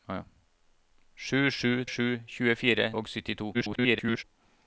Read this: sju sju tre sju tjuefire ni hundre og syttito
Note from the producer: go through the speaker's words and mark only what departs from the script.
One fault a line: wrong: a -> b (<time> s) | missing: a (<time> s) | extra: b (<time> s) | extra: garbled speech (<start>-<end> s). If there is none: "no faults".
missing: tre (1.9 s)
missing: ni hundre (2.9 s)
extra: garbled speech (3.5-4.2 s)